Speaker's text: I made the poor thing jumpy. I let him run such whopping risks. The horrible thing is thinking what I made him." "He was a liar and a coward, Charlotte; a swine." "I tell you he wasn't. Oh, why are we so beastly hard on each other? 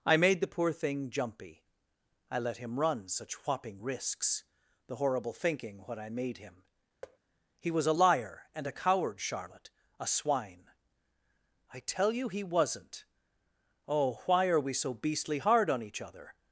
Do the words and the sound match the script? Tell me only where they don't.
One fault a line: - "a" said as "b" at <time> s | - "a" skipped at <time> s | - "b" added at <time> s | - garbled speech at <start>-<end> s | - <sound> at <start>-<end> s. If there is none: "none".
- "thing is" skipped at 5.3 s
- thud at 7.0-7.2 s